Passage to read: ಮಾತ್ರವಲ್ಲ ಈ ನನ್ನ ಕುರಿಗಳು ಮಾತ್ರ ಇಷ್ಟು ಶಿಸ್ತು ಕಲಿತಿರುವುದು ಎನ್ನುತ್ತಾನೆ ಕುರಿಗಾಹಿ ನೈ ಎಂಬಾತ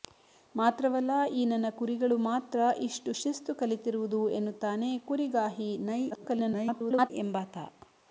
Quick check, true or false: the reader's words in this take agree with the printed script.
false